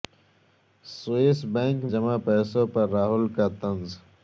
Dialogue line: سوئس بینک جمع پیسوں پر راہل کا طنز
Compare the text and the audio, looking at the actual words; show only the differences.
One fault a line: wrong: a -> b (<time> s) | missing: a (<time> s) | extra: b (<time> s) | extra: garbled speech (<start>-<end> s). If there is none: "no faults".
no faults